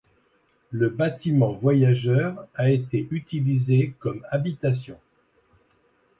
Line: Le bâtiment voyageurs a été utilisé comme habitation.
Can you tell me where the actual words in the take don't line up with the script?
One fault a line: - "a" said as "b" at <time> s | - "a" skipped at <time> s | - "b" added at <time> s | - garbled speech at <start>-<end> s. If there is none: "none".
none